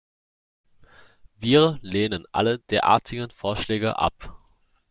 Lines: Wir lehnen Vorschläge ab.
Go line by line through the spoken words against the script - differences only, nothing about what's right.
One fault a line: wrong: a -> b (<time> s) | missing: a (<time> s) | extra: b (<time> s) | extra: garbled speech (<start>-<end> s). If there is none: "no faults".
extra: alle derartigen (2.3 s)